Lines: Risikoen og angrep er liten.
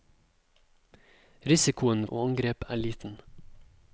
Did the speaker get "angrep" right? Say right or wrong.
right